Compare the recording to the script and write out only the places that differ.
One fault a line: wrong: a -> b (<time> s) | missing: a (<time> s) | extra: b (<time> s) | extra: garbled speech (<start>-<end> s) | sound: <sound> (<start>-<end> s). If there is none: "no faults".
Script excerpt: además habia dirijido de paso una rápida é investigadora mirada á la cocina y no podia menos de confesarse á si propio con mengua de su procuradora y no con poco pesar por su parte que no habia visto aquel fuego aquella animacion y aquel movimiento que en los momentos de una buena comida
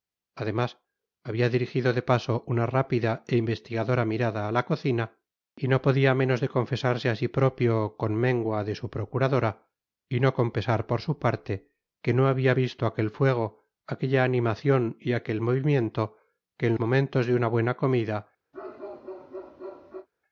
missing: poco (10.5 s)
missing: los (16.7 s)
sound: bark (18.5-20.1 s)